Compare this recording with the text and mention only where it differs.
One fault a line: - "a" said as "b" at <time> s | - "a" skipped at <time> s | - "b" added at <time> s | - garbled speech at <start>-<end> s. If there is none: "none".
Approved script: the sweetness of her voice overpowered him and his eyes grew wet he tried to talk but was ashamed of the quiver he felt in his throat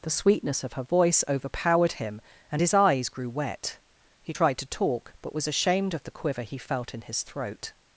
none